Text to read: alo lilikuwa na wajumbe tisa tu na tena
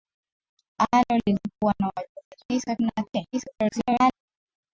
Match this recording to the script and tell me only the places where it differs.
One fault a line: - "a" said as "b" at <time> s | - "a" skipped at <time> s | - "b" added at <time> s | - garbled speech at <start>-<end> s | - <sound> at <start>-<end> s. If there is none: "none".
- "tu" skipped at 2.8 s
- garbled speech at 3.3-4.1 s